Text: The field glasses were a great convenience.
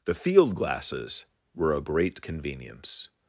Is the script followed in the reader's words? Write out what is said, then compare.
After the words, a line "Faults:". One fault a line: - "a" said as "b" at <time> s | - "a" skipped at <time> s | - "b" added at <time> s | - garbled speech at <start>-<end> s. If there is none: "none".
The field glasses were a great convenience.
Faults:
none